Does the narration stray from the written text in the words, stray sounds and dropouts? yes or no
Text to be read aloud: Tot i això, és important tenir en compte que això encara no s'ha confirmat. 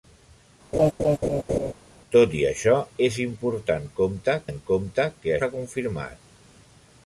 yes